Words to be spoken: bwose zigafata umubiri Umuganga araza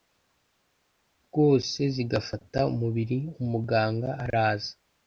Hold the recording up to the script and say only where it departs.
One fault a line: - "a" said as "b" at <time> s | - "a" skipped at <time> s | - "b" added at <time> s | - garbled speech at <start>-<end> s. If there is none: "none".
none